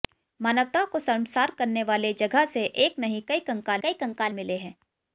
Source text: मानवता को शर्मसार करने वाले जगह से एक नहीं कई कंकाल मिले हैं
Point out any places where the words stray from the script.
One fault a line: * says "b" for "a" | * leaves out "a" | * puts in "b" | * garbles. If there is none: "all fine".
* puts in "कई कंकाल"